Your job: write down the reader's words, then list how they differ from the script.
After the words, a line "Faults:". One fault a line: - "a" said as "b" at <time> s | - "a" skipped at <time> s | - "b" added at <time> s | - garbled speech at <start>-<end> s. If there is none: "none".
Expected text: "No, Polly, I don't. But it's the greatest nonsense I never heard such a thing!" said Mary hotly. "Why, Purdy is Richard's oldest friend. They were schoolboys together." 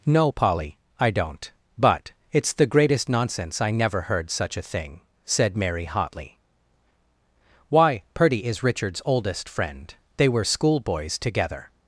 "No, Polly, I don't. But it's the greatest nonsense I never heard such a thing!" said Mary hotly. "Why, Purdy is Richard's oldest friend. They were schoolboys together."
Faults:
none